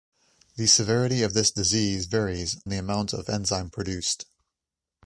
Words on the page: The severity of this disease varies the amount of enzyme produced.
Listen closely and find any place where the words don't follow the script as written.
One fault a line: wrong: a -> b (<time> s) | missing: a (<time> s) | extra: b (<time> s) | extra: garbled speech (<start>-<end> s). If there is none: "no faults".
no faults